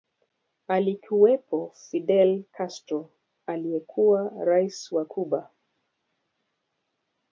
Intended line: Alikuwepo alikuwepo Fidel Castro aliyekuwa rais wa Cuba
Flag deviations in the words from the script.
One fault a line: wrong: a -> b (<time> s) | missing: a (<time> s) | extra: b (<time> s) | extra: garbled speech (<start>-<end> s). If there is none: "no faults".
missing: alikuwepo (1.7 s)